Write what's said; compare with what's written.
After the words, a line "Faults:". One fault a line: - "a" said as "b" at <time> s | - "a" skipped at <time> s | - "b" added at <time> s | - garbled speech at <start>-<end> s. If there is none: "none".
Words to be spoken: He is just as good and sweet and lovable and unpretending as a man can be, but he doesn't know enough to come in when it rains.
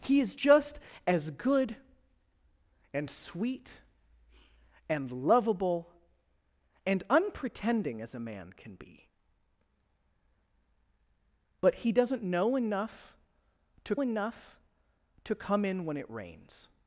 He is just as good and sweet and lovable and unpretending as a man can be, but he doesn't know enough to enough to come in when it rains.
Faults:
- "enough to" added at 14.0 s